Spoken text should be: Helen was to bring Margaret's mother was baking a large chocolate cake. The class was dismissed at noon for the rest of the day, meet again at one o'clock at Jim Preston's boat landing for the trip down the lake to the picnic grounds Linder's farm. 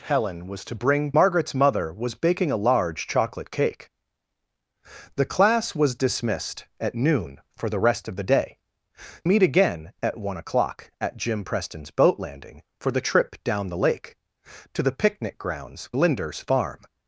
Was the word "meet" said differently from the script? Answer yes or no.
no